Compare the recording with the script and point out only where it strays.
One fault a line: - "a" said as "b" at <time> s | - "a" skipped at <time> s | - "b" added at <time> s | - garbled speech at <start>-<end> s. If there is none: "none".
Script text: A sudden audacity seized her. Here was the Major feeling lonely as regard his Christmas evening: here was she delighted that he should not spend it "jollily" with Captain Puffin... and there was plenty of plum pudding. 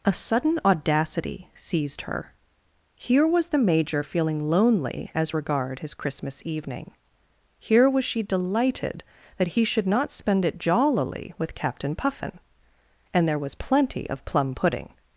none